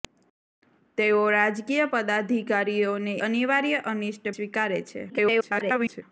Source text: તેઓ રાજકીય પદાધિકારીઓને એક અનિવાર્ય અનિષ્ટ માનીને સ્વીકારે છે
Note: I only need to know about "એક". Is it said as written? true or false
false